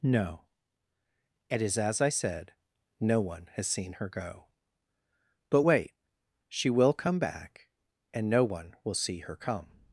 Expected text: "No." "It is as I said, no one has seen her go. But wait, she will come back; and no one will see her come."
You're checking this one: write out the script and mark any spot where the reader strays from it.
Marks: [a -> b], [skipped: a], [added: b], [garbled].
"No." "It is as I said, no one has seen her go. But wait, she will come back; and no one will see her come."